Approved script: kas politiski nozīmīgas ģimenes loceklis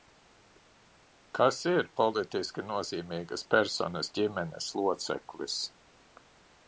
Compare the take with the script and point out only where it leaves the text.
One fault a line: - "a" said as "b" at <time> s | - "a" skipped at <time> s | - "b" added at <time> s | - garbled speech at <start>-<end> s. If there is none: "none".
- "ir" added at 1.7 s
- "personas" added at 3.6 s